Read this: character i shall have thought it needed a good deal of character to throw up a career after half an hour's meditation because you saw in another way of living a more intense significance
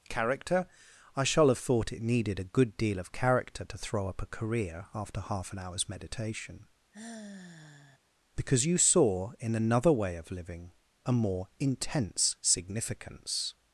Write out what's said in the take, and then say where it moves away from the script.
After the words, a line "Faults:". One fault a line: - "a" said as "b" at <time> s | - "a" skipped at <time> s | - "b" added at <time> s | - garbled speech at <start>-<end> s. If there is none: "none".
character i shall have thought it needed a good deal of character to throw up a career after half an hour's meditation because you saw in another way of living a more intense significance
Faults:
none